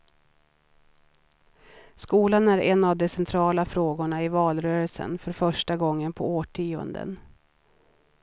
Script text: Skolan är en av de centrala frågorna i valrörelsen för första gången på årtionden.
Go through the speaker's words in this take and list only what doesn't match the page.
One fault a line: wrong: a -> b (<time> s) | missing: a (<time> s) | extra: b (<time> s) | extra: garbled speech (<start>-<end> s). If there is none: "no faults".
no faults